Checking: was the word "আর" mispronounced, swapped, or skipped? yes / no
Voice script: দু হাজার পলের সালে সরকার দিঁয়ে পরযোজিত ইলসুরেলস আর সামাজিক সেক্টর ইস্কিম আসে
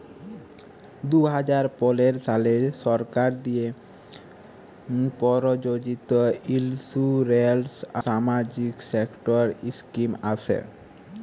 yes